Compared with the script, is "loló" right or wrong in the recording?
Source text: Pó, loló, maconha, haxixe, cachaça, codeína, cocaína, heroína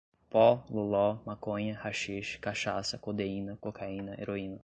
right